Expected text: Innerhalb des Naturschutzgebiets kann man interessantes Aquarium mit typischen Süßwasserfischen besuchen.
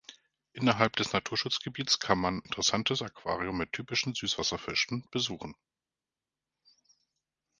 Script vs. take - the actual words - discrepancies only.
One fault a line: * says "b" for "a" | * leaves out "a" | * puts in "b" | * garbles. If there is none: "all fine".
all fine